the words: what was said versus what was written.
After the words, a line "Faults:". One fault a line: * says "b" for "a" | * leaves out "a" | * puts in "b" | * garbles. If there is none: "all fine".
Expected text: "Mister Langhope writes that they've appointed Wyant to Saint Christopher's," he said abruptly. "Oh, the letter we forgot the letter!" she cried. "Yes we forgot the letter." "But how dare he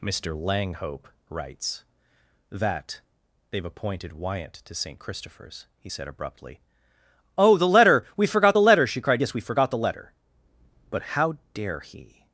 "Mister Langhope writes that they've appointed Wyant to Saint Christopher's," he said abruptly. "Oh, the letter we forgot the letter!" she cried. "Yes we forgot the letter." "But how dare he
Faults:
all fine